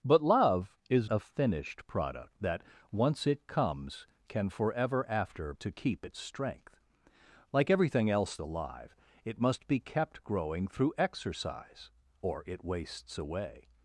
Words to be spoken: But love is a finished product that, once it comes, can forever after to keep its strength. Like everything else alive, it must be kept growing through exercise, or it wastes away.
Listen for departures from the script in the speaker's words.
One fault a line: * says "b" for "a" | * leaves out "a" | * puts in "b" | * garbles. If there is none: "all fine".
all fine